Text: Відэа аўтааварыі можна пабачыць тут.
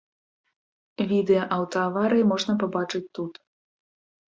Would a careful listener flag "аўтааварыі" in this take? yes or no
no